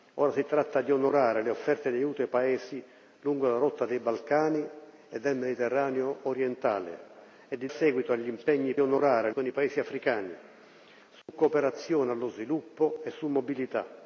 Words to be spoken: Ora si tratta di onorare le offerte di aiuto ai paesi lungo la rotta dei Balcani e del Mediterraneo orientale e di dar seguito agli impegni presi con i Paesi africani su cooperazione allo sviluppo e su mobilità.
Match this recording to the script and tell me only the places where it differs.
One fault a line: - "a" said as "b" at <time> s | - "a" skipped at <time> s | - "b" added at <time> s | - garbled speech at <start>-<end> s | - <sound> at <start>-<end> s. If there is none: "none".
- "dar" skipped at 7.7 s
- "presi" said as "onorare" at 8.8 s
- dropout at 11.2-11.3 s